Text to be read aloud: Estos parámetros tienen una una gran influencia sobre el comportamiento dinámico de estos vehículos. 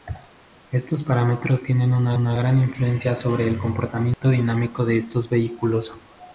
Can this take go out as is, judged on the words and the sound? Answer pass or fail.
fail